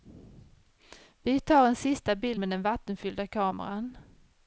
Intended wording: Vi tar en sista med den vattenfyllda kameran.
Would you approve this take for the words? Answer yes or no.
no